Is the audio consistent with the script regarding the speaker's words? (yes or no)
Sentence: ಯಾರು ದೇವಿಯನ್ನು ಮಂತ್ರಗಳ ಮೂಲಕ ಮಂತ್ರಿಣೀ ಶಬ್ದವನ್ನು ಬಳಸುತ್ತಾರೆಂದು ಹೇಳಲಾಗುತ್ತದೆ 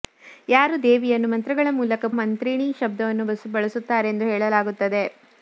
yes